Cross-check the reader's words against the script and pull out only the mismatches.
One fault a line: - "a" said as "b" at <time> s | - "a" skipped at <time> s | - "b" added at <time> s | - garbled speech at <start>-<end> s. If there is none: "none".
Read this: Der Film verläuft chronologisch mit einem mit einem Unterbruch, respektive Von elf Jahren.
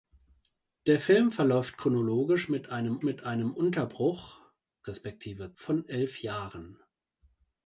none